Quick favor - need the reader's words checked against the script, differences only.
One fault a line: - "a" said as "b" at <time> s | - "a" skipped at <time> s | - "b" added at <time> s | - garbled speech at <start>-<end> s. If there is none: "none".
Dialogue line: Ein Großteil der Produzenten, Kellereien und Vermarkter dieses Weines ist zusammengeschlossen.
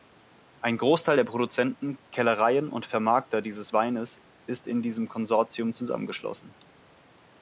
- "in diesem Konsortium" added at 4.7 s